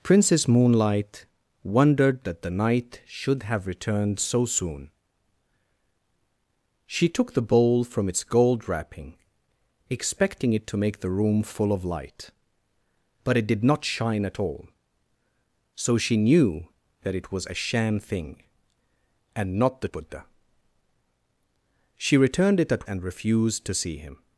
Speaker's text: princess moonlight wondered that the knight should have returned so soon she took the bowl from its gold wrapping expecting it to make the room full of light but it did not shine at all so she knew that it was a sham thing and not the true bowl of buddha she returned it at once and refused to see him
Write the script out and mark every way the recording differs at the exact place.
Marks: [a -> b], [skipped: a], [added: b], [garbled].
princess moonlight wondered that the knight should have returned so soon she took the bowl from its gold wrapping expecting it to make the room full of light but it did not shine at all so she knew that it was a sham thing and not the [skipped: true bowl of] buddha she returned it at [skipped: once] and refused to see him